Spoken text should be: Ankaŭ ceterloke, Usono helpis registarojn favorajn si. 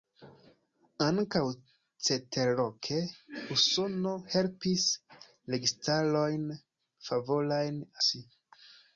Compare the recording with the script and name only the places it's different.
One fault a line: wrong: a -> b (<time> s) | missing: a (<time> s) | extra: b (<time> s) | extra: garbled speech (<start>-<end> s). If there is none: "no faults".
no faults